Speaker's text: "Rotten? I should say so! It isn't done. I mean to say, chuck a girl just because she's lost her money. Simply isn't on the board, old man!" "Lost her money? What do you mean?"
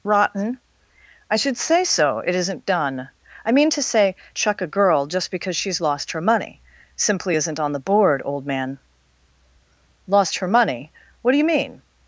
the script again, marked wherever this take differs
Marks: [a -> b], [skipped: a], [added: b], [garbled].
"Rotten? I should say so! It isn't done. I mean to say, chuck a girl just because she's lost her money. Simply isn't on the board, old man!" "Lost her money? What do you mean?"